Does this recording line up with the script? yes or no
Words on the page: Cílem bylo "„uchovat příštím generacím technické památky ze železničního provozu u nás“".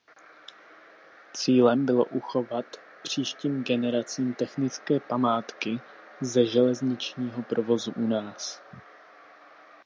yes